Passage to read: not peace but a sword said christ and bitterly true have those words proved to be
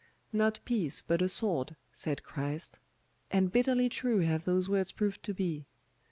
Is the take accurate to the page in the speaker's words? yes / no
yes